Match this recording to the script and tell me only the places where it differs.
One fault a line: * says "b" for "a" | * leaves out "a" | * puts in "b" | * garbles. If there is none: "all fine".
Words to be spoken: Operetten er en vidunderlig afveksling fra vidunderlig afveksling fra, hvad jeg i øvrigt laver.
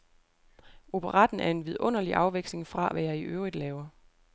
* leaves out "vidunderlig afveksling fra"